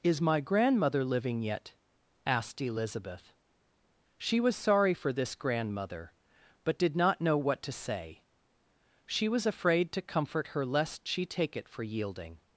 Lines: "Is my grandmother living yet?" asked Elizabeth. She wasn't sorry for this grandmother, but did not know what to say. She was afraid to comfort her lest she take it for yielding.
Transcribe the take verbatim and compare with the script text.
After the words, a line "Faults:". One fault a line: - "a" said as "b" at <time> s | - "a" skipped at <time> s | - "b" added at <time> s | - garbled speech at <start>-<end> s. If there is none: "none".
"Is my grandmother living yet?" asked Elizabeth. She was sorry for this grandmother, but did not know what to say. She was afraid to comfort her lest she take it for yielding.
Faults:
- "wasn't" said as "was" at 4.4 s